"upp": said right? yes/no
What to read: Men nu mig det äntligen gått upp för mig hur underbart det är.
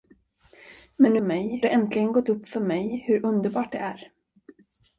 yes